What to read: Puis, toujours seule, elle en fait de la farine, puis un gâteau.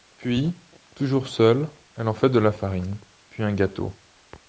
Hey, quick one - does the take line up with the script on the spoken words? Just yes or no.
yes